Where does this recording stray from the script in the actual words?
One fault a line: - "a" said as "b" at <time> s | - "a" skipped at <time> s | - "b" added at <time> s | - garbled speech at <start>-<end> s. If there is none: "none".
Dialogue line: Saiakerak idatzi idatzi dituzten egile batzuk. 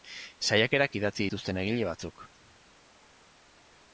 - "idatzi" skipped at 1.3 s